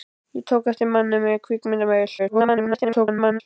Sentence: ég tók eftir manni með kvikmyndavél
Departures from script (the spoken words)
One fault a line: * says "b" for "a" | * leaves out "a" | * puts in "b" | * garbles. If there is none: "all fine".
* garbles